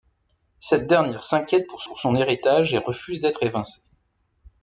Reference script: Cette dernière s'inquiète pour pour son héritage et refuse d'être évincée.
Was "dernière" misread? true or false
false